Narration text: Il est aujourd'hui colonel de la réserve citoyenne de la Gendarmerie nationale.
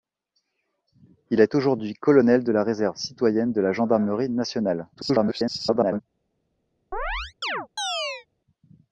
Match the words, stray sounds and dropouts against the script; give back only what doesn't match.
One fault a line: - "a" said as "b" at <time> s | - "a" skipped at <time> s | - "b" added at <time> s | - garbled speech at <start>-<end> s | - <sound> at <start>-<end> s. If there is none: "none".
- garbled speech at 4.9-6.0 s
- chirp at 6.9-8.3 s